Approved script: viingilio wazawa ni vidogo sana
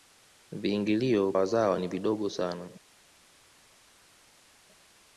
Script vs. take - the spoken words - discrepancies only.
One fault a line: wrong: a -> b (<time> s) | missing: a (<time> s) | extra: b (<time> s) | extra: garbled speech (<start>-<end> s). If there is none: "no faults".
no faults